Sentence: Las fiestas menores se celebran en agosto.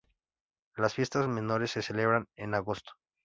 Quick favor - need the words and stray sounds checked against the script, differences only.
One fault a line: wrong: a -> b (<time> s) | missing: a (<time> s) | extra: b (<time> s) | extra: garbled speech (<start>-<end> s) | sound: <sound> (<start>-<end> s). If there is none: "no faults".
no faults